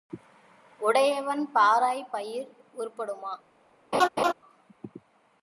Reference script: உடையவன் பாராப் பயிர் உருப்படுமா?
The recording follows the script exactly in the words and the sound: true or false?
false